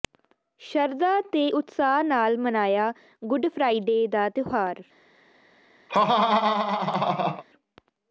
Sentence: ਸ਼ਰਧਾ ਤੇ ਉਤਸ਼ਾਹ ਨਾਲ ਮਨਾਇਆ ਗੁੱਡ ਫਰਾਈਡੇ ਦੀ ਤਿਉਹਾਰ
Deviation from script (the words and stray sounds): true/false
true